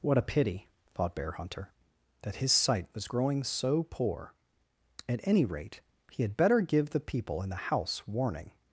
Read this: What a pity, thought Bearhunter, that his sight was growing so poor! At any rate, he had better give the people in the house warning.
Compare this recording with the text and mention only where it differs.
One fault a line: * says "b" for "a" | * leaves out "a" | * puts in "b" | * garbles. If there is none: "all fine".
all fine